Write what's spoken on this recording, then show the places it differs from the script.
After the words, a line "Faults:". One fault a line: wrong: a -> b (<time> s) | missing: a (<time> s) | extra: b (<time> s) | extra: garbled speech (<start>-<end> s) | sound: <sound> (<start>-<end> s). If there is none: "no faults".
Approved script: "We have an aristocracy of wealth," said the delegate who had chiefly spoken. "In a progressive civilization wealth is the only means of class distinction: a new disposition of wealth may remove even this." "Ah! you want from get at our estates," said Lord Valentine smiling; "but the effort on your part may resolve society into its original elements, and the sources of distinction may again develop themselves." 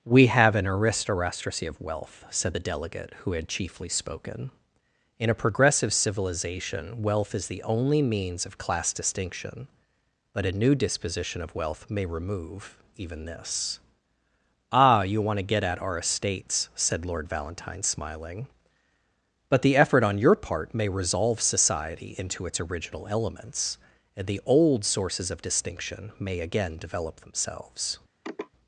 "We have an aristocracy of wealth," said the delegate who had chiefly spoken. "In a progressive civilization wealth is the only means of class distinction: but a new disposition of wealth may remove even this." "Ah! you want to get at our estates," said Lord Valentine smiling; "but the effort on your part may resolve society into its original elements, and the old sources of distinction may again develop themselves."
Faults:
extra: but (10.3 s)
wrong: from -> to (15.4 s)
extra: old (24.4 s)
sound: sniff (28.2-28.5 s)